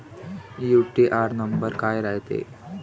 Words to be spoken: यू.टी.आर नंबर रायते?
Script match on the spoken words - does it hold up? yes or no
no